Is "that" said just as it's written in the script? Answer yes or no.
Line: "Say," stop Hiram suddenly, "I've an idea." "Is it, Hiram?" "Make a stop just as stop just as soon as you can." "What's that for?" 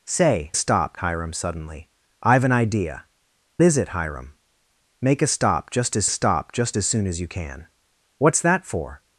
yes